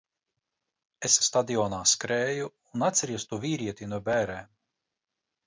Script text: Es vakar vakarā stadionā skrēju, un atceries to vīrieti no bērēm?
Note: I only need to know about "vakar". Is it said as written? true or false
false